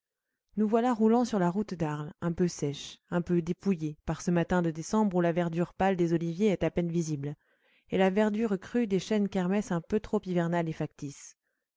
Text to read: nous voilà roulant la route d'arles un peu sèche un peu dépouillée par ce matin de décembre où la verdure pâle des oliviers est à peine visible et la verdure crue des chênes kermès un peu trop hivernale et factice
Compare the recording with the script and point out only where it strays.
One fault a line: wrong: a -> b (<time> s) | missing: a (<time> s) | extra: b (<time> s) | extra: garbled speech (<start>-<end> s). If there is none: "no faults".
extra: sur (1.2 s)